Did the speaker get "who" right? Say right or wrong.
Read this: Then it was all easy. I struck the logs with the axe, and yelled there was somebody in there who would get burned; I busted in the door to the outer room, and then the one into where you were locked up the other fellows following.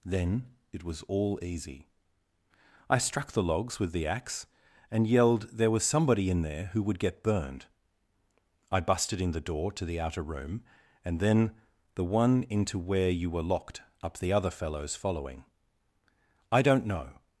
right